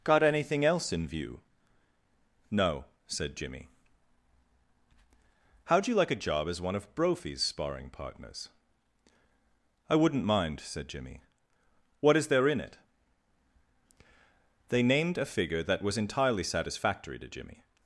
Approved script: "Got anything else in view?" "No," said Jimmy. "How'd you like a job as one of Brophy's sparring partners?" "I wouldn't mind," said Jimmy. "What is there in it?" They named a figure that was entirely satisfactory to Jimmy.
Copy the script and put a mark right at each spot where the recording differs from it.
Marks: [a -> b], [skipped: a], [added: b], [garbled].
"Got anything else in view?" "No," said Jimmy. "How'd you like a job as one of Brophy's sparring partners?" "I wouldn't mind," said Jimmy. "What is there in it?" They named a figure that was entirely satisfactory to Jimmy.